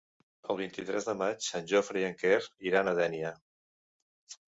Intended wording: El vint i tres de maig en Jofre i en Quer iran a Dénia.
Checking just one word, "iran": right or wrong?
right